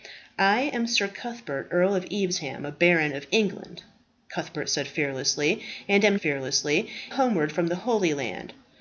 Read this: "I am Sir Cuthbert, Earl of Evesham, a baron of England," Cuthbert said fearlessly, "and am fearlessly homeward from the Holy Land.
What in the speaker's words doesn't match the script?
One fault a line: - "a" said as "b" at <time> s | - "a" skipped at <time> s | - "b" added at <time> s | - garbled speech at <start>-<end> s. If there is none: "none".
none